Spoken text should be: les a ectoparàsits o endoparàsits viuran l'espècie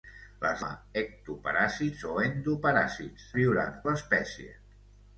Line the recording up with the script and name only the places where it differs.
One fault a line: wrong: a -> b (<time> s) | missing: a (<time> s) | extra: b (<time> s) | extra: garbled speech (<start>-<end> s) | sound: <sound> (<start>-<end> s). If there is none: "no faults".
no faults